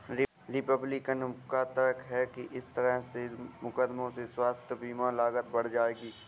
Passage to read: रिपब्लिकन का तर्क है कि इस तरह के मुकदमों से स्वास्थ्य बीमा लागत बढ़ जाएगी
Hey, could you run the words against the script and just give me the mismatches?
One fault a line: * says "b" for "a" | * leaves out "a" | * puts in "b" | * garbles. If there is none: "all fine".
all fine